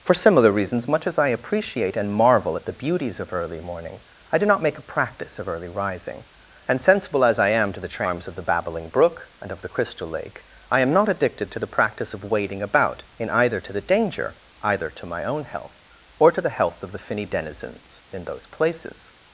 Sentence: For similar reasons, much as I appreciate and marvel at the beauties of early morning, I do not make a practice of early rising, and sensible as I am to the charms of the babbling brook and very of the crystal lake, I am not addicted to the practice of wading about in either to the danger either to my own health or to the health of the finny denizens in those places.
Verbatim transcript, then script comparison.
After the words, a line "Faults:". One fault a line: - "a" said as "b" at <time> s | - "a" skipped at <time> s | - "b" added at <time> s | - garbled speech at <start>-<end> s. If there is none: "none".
For similar reasons, much as I appreciate and marvel at the beauties of early morning, I do not make a practice of early rising, and sensible as I am to the charms of the babbling brook and of the crystal lake, I am not addicted to the practice of wading about in either to the danger either to my own health or to the health of the finny denizens in those places.
Faults:
- "very" skipped at 9.5 s